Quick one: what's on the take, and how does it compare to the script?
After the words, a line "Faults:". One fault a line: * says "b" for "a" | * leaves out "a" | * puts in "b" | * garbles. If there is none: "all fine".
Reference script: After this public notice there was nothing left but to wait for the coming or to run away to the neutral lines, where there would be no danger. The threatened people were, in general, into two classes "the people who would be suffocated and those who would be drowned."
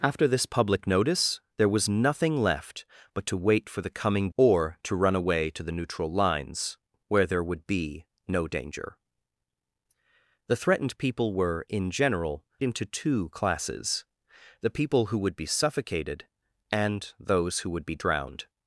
After this public notice there was nothing left but to wait for the coming or to run away to the neutral lines, where there would be no danger. The threatened people were, in general, into two classes "the people who would be suffocated and those who would be drowned."
Faults:
all fine